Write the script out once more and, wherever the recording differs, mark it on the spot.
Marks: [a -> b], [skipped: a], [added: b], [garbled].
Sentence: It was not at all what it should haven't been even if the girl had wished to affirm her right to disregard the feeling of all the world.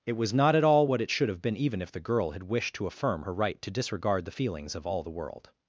It was not at all what it should [haven't -> have] been even if the girl had wished to affirm her right to disregard the [feeling -> feelings] of all the world.